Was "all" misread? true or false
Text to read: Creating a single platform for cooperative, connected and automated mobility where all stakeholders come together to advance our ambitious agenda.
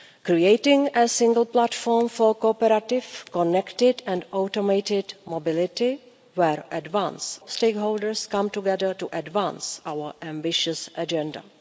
true